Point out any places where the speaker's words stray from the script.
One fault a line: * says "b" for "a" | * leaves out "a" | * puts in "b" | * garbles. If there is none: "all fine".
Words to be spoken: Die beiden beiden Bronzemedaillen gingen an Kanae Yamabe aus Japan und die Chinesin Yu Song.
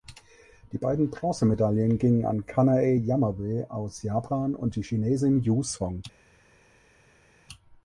* leaves out "beiden"